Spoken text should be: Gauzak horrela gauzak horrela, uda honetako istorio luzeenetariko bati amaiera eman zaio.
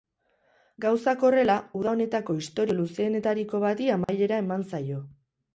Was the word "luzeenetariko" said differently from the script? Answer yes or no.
no